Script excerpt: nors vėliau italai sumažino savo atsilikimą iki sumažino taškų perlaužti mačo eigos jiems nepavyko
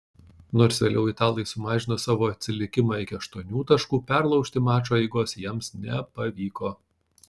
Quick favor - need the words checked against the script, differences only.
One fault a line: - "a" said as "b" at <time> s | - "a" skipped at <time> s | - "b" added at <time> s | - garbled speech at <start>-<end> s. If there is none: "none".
- "sumažino" said as "aštuonių" at 3.2 s